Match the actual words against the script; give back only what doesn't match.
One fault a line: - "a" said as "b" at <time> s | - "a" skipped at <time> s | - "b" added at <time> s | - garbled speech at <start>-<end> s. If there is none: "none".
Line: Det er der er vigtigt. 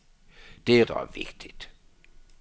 none